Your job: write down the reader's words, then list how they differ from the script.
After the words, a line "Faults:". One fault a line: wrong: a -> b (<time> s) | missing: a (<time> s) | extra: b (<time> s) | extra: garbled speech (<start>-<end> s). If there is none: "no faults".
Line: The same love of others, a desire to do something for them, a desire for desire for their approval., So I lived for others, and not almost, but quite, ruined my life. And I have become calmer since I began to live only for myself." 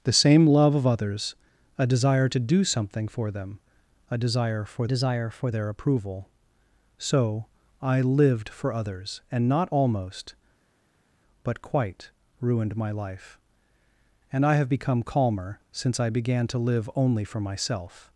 The same love of others, a desire to do something for them, a desire for desire for their approval., So I lived for others, and not almost, but quite, ruined my life. And I have become calmer since I began to live only for myself."
Faults:
no faults